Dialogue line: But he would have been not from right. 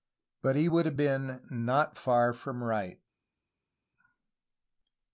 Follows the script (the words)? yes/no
no